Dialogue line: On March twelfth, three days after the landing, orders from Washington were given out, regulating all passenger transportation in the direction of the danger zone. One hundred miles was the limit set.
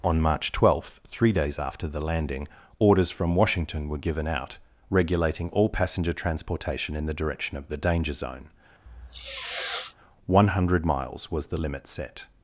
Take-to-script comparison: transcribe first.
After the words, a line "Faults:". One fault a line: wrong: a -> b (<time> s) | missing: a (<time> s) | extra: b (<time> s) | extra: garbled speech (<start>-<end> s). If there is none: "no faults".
On March twelfth, three days after the landing, orders from Washington were given out, regulating all passenger transportation in the direction of the danger zone. One hundred miles was the limit set.
Faults:
no faults